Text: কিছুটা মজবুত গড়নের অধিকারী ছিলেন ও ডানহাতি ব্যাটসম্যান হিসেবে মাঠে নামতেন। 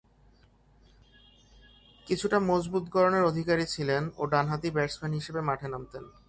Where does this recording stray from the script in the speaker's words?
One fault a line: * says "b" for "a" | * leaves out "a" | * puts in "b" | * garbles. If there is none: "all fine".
all fine